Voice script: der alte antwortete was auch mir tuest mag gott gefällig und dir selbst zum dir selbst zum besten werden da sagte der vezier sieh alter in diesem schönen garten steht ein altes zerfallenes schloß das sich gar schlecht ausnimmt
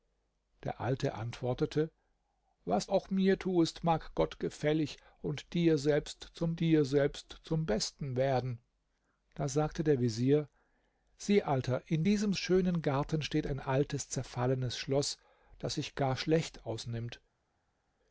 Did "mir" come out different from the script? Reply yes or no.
no